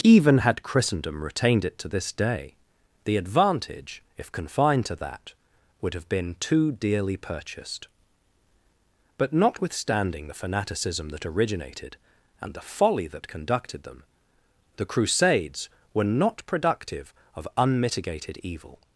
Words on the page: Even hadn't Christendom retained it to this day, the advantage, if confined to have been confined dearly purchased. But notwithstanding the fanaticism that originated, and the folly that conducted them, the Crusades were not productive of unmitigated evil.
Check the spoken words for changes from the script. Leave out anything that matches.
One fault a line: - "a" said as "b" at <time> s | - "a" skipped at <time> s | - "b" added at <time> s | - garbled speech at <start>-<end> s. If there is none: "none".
- "hadn't" said as "had" at 0.4 s
- "that would" added at 5.0 s
- "confined" said as "too" at 6.4 s